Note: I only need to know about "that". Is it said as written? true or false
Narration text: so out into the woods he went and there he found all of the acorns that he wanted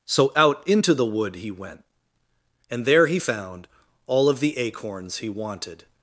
false